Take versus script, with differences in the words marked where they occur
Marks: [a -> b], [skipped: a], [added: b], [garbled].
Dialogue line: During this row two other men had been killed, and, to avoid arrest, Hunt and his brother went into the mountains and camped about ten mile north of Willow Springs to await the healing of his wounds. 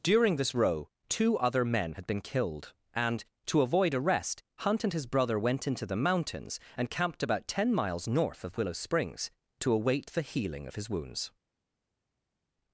During this row two other men had been killed, and, to avoid arrest, Hunt and his brother went into the mountains and camped about ten [mile -> miles] north of Willow Springs to await the healing of his wounds.